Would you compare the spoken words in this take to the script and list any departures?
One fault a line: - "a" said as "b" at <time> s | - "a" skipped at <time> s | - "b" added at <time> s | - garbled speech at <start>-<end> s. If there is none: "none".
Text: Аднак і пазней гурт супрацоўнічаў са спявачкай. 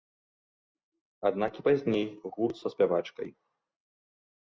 - "супрацоўнічаў" skipped at 2.5 s